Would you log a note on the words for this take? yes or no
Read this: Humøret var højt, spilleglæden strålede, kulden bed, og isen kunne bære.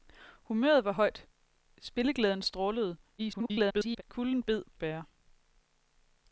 yes